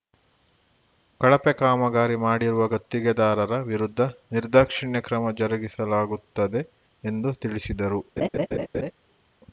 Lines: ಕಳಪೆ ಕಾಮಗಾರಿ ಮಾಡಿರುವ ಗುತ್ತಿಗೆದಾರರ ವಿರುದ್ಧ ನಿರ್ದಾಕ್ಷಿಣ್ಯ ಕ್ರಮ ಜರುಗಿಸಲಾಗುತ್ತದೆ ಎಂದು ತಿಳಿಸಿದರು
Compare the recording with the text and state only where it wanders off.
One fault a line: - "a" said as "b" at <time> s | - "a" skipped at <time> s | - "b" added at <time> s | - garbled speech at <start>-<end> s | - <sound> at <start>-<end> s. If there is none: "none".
- laugh at 8.2-8.9 s